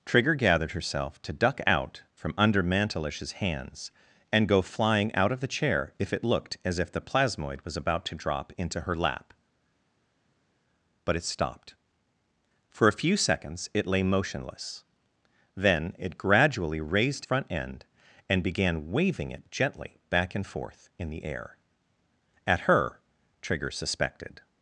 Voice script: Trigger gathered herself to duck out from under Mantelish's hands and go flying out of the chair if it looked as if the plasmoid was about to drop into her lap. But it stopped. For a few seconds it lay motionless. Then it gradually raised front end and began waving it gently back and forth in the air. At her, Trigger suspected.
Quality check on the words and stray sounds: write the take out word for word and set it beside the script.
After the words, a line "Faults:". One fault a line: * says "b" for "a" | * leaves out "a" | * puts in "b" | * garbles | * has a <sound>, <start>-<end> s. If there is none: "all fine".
Trigger gathered herself to duck out from under Mantelish's hands and go flying out of the chair if it looked as if the plasmoid was about to drop into her lap. But it stopped. For a few seconds it lay motionless. Then it gradually raised front end and began waving it gently back and forth in the air. At her, Trigger suspected.
Faults:
all fine